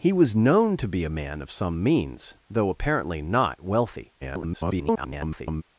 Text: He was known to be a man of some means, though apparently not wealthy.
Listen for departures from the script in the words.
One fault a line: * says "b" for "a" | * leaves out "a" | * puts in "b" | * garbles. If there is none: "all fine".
* garbles